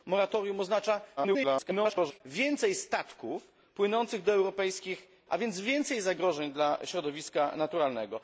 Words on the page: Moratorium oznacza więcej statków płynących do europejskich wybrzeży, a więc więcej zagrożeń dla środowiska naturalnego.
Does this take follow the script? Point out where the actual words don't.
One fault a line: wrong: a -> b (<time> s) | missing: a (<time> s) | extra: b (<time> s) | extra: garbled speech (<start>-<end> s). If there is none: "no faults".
extra: garbled speech (1.2-2.2 s)
missing: wybrzeży (5.1 s)